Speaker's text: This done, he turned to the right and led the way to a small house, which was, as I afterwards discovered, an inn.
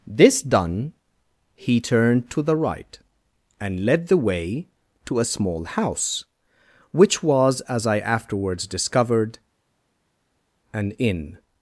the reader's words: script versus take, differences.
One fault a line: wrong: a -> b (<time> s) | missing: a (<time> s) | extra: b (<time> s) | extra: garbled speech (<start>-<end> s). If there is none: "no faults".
no faults